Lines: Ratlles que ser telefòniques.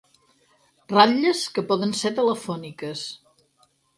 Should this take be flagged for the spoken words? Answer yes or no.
yes